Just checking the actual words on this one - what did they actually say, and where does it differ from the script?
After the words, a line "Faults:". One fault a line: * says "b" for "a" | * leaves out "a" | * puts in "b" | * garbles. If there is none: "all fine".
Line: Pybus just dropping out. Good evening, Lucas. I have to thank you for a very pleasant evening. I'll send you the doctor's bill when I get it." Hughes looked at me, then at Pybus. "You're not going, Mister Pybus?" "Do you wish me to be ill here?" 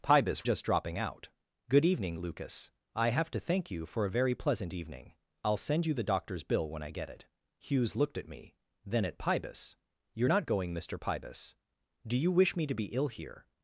Pybus just dropping out. Good evening, Lucas. I have to thank you for a very pleasant evening. I'll send you the doctor's bill when I get it." Hughes looked at me, then at Pybus. "You're not going, Mister Pybus?" "Do you wish me to be ill here?"
Faults:
all fine